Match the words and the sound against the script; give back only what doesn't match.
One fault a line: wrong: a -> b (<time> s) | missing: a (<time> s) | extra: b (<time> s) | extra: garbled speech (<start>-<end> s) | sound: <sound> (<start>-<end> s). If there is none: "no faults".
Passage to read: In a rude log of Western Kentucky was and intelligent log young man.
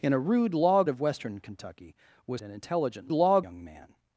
no faults